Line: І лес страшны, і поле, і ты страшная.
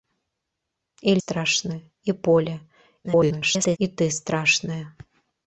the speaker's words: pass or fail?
fail